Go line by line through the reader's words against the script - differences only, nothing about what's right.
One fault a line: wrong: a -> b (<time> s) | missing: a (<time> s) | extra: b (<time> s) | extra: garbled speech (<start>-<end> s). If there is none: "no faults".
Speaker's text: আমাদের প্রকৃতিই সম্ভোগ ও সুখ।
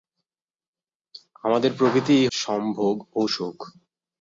no faults